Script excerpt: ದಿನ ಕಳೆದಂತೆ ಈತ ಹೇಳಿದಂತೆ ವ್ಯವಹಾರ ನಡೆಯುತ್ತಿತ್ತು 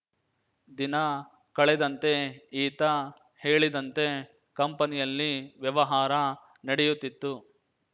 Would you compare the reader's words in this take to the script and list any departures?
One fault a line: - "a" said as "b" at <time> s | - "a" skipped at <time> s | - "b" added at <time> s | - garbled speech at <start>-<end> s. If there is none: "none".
- "ಕಂಪನಿಯಲ್ಲಿ" added at 4.6 s